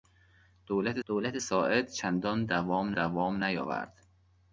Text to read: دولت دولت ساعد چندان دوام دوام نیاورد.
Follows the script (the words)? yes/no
yes